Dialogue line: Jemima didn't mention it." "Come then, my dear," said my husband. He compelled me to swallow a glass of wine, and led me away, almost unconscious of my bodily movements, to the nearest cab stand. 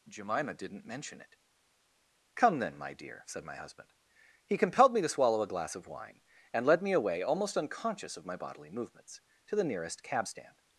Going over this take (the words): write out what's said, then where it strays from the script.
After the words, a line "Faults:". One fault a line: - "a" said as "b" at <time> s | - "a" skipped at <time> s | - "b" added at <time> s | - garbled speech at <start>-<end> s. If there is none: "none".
Jemima didn't mention it." "Come then, my dear," said my husband. He compelled me to swallow a glass of wine, and led me away, almost unconscious of my bodily movements, to the nearest cab stand.
Faults:
none